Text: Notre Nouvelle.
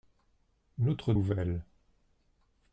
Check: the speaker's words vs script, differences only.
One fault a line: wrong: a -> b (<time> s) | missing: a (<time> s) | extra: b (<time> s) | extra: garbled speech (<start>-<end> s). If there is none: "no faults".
no faults